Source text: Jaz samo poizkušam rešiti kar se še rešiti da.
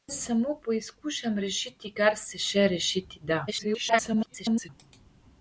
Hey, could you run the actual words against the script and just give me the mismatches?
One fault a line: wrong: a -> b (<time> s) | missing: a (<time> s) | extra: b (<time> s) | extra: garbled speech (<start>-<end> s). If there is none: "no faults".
extra: garbled speech (3.5-4.7 s)